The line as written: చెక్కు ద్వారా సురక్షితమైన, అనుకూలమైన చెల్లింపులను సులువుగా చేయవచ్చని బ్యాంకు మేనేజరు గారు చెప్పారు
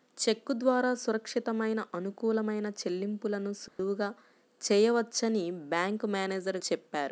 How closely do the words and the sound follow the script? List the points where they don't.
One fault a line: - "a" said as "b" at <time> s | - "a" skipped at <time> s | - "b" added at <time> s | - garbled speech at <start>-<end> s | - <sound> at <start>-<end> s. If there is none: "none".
- dropout at 3.7-3.8 s
- "గారు" skipped at 6.6 s